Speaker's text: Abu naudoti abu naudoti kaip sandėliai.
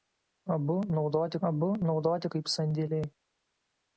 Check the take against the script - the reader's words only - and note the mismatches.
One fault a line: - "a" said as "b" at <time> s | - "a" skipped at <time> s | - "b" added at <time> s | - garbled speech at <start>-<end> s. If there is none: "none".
none